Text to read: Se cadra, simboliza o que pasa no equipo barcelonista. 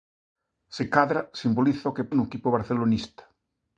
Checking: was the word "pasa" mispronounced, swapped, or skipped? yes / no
yes